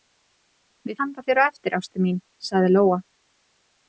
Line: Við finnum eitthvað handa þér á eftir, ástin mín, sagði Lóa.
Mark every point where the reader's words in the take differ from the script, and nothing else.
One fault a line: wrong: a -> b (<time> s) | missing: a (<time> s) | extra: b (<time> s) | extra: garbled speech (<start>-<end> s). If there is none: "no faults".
missing: finnum eitthvað (1.0 s)